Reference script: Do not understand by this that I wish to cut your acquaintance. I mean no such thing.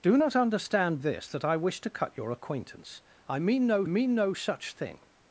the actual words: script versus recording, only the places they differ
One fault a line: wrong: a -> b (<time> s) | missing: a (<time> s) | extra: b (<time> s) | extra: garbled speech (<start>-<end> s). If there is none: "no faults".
missing: by (1.0 s)
extra: mean no (3.9 s)